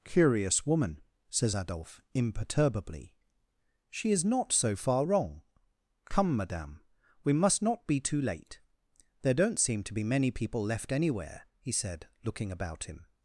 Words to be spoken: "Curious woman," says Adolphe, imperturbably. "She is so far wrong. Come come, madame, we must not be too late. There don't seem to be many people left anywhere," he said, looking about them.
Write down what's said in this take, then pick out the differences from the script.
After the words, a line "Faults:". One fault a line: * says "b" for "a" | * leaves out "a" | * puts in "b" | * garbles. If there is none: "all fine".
"Curious woman," says Adolphe, imperturbably. "She is not so far wrong. Come, madame, we must not be too late. There don't seem to be many people left anywhere," he said, looking about him.
Faults:
* puts in "not"
* leaves out "come"
* says "him" for "them"